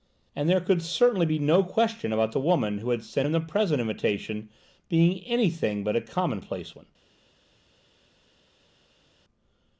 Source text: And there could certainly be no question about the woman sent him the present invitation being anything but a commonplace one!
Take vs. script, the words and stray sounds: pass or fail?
fail